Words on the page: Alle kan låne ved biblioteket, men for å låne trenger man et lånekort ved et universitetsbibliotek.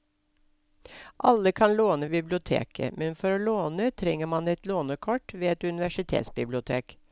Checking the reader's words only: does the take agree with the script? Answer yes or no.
no